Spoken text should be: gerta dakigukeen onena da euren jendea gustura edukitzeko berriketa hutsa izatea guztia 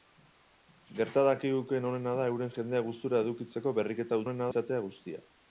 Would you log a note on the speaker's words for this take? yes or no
yes